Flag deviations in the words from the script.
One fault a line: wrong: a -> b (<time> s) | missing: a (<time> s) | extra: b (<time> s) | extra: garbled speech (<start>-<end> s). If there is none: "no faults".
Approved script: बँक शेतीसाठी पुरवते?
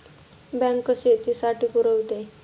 no faults